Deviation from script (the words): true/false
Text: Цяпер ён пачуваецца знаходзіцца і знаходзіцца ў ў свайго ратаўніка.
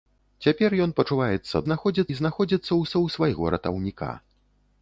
false